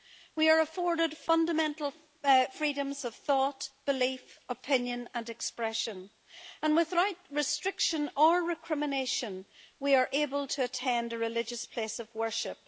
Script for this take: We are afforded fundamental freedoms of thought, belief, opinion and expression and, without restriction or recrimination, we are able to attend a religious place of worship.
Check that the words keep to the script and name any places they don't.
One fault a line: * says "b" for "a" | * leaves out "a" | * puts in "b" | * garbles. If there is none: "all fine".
all fine